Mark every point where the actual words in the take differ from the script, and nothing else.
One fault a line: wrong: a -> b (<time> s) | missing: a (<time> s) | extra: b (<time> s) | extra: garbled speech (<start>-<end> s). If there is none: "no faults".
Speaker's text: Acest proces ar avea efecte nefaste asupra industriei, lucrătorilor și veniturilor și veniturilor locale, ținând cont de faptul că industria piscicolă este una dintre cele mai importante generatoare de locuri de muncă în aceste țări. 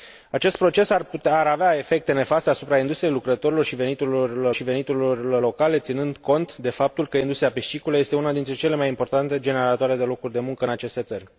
no faults